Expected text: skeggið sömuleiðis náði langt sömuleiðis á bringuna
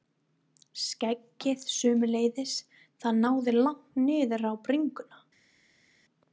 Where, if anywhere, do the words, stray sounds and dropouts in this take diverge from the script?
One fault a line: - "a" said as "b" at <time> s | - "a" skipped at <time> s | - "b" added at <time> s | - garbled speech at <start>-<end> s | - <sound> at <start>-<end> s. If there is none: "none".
- "það" added at 3.0 s
- "sömuleiðis" said as "niður" at 4.1 s